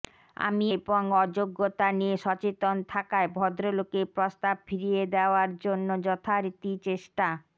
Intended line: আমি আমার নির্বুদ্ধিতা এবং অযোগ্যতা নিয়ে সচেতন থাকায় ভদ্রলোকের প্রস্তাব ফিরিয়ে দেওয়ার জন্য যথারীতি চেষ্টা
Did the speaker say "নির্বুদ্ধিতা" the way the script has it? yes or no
no